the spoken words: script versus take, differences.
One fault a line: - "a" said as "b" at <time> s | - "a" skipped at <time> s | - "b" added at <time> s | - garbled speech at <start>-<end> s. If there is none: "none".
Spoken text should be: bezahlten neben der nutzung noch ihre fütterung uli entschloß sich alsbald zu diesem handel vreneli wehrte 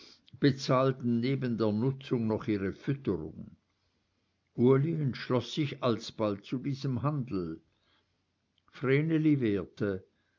none